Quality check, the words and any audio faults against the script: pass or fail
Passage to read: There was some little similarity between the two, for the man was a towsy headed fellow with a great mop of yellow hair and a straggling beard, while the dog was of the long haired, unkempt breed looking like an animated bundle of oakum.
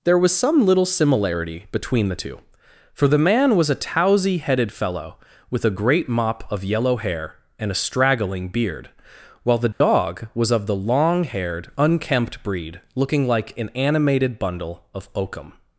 fail